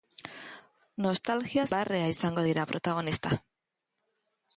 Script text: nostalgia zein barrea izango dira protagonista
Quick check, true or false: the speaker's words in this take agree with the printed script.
false